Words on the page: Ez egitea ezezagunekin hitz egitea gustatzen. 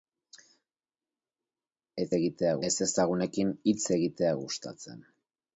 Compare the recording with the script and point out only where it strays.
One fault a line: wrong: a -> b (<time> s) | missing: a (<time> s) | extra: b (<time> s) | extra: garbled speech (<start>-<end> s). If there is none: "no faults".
no faults